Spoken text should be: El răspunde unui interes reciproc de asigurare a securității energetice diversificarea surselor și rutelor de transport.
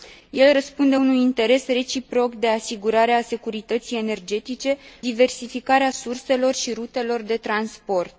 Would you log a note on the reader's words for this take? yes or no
no